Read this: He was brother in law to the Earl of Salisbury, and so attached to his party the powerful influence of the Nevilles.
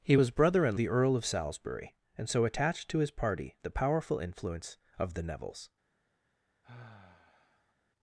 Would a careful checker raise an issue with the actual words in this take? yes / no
yes